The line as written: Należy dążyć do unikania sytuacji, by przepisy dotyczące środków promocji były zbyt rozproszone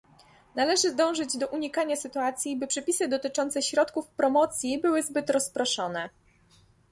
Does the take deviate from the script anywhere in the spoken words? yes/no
no